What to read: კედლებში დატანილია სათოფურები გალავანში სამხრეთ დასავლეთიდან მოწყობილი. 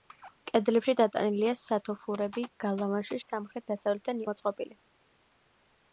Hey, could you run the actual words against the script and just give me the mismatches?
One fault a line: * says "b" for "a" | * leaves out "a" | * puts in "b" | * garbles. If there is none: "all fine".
all fine